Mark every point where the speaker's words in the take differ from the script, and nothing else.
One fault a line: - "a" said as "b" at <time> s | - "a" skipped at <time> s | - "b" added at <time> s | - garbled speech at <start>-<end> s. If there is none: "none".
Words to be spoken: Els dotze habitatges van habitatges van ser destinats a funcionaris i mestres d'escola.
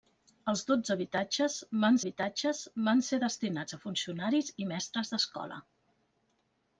none